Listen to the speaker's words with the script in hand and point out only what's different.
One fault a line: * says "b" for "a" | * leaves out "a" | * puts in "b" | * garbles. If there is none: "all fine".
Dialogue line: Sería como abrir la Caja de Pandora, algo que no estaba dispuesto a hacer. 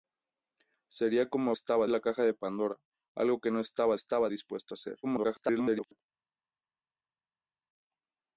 * says "estaba" for "abrir"
* puts in "estaba"
* garbles